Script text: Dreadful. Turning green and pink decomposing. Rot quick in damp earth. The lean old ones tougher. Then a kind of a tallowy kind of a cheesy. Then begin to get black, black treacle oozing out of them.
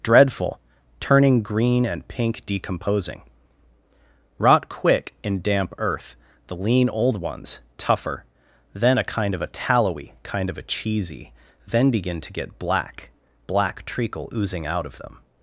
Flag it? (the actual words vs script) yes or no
no